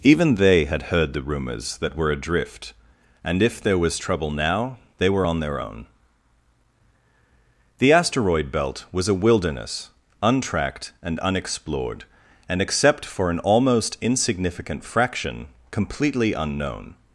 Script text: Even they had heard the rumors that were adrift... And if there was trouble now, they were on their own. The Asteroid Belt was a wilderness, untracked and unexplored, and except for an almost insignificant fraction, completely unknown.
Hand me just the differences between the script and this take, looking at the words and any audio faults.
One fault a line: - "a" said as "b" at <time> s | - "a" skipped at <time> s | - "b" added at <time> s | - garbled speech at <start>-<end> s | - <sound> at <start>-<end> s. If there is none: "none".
none